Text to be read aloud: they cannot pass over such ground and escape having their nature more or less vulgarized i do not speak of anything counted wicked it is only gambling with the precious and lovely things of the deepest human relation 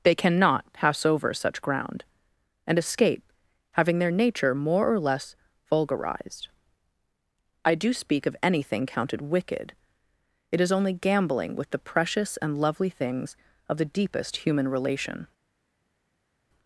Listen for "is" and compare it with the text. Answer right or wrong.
right